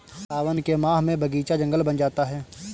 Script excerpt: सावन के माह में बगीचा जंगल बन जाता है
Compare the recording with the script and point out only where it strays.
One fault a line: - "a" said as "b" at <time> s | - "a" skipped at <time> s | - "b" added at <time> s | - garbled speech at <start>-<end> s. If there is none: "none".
none